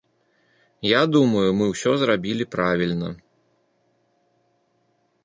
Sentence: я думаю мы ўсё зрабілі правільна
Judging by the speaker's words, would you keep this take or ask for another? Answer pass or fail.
pass